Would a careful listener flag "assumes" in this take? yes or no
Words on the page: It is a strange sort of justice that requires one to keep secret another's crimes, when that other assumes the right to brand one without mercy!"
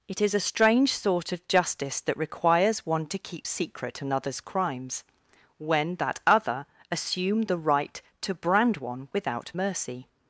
yes